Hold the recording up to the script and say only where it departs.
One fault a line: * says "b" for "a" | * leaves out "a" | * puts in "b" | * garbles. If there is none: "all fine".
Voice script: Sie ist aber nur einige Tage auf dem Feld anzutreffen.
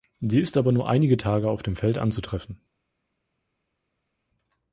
all fine